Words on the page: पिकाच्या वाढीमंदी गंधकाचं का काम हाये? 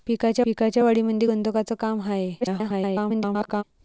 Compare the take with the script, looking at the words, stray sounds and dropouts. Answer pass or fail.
fail